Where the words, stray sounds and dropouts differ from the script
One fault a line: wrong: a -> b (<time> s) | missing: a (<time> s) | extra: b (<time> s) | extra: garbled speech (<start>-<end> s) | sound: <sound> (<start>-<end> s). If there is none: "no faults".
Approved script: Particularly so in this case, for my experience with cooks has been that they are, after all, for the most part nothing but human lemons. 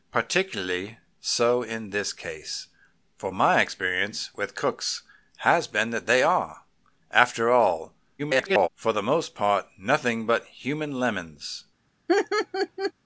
extra: garbled speech (8.2-8.7 s)
sound: laugh (12.1-12.9 s)